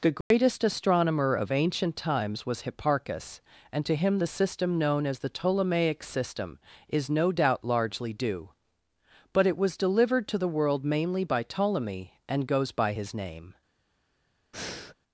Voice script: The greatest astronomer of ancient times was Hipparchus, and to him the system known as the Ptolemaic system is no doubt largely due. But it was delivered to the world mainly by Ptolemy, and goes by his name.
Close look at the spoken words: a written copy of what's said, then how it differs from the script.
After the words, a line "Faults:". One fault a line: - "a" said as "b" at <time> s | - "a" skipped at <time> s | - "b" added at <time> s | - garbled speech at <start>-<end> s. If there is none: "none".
The greatest astronomer of ancient times was Hipparchus, and to him the system known as the Ptolemaic system is no doubt largely due. But it was delivered to the world mainly by Ptolemy, and goes by his name.
Faults:
none